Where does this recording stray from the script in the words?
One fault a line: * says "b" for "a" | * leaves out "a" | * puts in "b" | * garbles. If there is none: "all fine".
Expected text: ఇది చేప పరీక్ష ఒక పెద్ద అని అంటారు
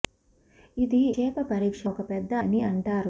all fine